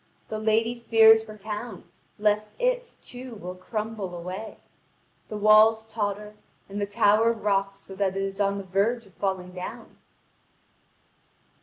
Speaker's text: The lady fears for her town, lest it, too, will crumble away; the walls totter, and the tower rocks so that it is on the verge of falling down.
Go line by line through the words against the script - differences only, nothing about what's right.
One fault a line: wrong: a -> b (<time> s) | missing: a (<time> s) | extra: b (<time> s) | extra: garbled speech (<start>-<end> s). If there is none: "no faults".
missing: her (1.3 s)